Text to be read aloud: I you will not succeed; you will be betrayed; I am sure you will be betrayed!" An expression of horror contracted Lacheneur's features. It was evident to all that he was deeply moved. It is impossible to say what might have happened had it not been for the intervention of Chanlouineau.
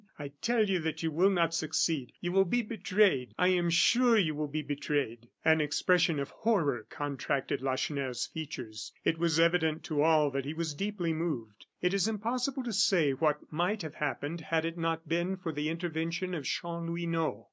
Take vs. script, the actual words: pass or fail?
fail